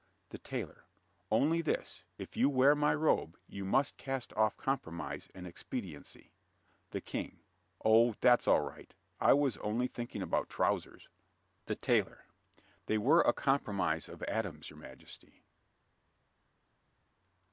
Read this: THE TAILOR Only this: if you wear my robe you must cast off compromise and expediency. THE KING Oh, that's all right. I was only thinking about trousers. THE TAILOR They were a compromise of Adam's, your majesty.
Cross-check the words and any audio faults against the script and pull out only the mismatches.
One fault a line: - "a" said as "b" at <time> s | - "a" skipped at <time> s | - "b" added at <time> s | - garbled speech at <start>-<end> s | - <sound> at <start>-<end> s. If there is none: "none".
none